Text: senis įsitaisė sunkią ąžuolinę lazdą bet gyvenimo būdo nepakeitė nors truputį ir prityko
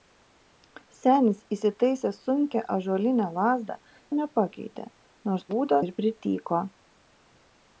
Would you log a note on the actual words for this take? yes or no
yes